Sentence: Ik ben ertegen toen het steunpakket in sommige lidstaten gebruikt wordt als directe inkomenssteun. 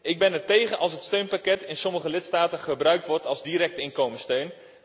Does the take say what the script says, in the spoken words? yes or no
no